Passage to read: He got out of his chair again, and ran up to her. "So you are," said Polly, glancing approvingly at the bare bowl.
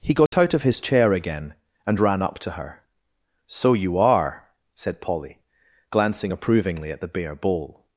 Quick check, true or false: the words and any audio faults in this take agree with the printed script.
false